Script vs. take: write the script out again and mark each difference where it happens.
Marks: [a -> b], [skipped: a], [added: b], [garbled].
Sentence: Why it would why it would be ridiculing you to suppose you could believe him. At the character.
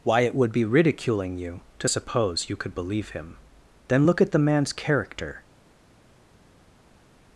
Why it would [skipped: why it would] be ridiculing you to suppose you could believe him. [added: Then look] At the [added: man's] character.